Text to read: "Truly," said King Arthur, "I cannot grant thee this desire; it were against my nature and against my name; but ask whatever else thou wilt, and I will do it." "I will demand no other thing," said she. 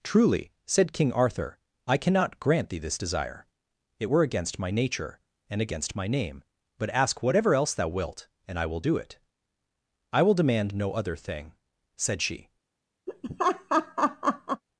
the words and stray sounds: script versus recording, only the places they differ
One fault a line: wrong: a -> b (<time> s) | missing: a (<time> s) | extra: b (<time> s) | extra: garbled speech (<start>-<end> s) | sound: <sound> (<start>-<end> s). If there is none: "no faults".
sound: laugh (13.1-14.6 s)